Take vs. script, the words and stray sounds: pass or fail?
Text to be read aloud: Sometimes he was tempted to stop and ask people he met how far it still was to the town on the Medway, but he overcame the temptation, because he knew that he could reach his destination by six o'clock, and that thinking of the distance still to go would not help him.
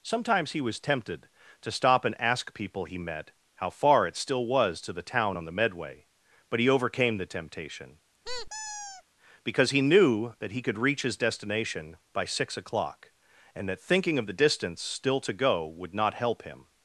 fail